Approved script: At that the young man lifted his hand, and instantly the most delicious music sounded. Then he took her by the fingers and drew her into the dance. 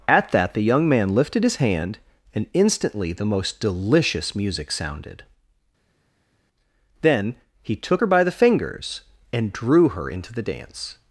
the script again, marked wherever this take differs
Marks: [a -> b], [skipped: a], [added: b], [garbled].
At that the young man lifted his hand, and instantly the most delicious music sounded. Then he took her by the fingers and drew her into the dance.